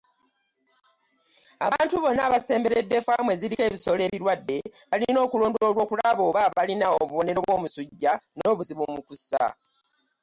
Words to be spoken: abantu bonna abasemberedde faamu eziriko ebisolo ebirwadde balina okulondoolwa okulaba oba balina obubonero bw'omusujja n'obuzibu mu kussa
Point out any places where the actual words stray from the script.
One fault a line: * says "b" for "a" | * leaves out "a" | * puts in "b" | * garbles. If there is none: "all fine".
all fine